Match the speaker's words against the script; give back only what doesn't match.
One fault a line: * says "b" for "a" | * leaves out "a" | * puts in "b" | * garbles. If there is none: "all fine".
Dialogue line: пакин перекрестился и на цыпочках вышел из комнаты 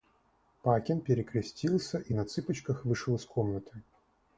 all fine